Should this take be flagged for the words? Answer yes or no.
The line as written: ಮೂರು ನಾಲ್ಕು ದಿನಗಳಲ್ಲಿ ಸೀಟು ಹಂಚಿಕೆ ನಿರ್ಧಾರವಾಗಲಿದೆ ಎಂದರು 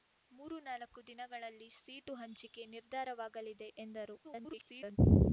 yes